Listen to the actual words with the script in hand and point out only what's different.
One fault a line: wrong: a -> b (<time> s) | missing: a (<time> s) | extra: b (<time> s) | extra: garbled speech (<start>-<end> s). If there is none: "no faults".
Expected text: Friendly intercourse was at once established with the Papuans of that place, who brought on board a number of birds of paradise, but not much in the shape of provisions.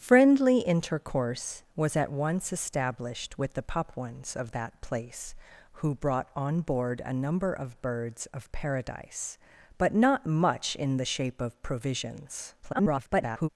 extra: garbled speech (12.6-13.5 s)